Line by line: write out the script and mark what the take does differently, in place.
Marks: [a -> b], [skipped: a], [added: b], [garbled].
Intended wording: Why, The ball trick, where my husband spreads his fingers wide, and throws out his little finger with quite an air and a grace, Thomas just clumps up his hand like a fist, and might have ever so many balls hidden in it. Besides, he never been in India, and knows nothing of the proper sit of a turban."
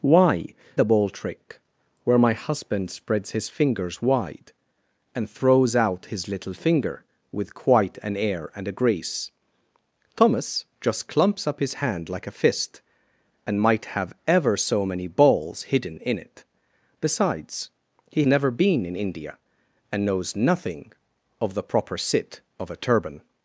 Why, The ball trick, where my husband spreads his fingers wide, and throws out his little finger with quite an air and a grace, Thomas just clumps up his hand like a fist, and might have ever so many balls hidden in it. Besides, he never been in India, and knows nothing of the proper sit of a turban."